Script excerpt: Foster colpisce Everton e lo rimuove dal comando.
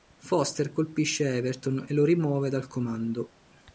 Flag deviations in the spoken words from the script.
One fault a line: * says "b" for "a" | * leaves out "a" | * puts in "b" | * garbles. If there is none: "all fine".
all fine